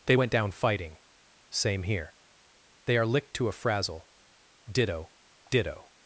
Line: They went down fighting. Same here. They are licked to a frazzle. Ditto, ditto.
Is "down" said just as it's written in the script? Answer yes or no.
yes